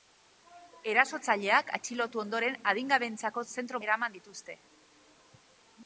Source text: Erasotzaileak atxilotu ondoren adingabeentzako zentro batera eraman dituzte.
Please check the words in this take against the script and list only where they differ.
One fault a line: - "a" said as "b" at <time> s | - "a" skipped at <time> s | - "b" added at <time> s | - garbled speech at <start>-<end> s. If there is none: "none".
- "batera" skipped at 3.8 s